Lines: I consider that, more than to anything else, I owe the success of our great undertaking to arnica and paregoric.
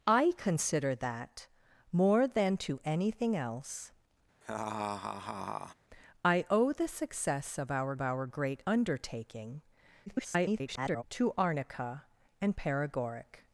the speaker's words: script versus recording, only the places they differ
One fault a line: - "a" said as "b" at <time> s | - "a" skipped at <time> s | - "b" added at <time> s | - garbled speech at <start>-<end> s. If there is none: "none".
- "our" added at 8.0 s
- garbled speech at 10.1-11.0 s